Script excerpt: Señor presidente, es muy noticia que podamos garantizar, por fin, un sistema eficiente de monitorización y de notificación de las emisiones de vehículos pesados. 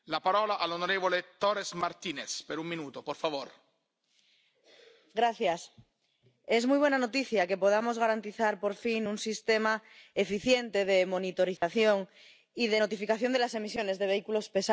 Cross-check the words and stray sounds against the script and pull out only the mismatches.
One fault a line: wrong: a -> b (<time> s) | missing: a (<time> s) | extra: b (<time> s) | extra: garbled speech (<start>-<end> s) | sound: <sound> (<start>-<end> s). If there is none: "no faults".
extra: buena (6.8 s)
sound: dropout (11.6-11.6 s)